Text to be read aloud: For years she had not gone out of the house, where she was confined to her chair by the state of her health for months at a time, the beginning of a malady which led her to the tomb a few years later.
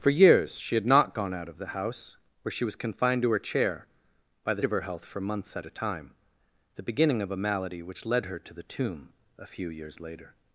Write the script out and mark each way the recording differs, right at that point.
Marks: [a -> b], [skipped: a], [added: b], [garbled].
For years she had not gone out of the house, where she was confined to her chair by the [skipped: state] of her health for months at a time, the beginning of a malady which led her to the tomb a few years later.